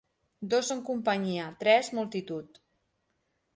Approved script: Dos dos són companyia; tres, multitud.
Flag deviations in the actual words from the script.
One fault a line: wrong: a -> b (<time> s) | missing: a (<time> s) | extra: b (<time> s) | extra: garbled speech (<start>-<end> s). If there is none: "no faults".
missing: dos (0.7 s)